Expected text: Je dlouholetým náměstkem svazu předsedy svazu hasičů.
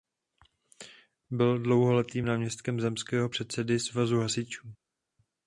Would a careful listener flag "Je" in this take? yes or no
yes